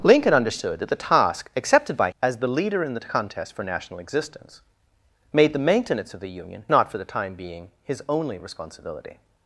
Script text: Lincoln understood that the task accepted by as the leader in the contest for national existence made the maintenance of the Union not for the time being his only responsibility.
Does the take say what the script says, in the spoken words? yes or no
yes